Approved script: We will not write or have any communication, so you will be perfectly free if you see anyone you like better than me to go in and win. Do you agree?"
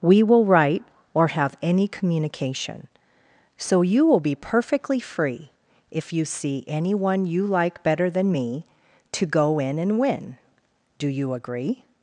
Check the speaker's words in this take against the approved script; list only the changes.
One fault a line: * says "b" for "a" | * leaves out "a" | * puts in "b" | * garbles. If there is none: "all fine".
* leaves out "not"